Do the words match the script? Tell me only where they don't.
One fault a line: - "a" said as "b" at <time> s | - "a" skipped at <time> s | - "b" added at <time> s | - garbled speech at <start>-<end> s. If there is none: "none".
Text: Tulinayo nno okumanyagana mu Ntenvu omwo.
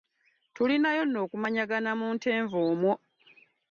none